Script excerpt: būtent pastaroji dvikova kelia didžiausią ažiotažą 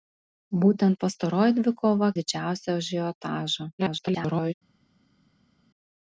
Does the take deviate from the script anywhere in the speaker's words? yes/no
yes